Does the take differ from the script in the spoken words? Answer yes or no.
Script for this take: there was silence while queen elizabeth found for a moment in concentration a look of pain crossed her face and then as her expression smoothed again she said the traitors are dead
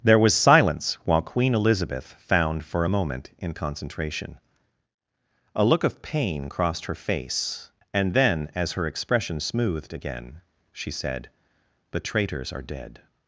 no